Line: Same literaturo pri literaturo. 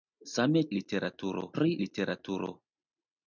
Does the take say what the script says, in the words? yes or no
yes